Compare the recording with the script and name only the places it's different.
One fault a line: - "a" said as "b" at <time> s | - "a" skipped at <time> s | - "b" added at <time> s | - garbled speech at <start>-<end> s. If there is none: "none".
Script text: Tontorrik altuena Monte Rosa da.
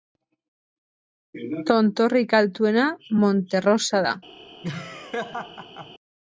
none